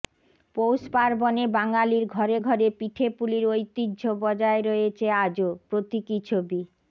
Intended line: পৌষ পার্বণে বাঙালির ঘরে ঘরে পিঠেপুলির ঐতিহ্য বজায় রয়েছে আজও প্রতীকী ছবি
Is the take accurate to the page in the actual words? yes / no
yes